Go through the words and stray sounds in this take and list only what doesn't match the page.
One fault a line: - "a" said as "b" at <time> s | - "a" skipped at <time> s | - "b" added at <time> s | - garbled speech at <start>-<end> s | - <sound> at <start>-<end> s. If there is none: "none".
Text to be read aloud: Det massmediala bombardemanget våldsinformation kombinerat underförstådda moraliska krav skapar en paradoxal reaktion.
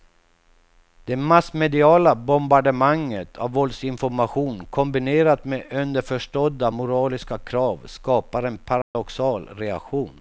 - "av" added at 3.4 s
- "med" added at 5.5 s
- dropout at 8.8-9.0 s